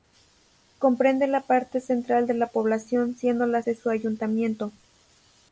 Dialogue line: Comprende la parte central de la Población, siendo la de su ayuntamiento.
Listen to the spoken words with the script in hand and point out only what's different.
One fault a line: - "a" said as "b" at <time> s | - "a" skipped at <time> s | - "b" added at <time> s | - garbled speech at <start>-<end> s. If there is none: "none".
none